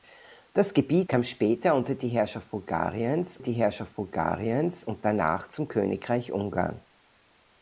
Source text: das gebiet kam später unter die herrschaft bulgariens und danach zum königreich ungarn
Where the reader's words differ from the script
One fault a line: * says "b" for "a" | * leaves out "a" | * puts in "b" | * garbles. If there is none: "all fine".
* puts in "die herrschaft bulgariens"